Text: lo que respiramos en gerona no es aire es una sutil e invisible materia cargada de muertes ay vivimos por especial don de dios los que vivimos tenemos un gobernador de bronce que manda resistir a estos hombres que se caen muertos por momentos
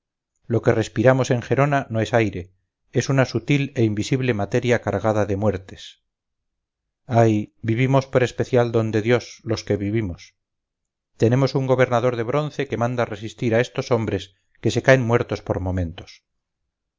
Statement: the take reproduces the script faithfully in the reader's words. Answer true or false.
true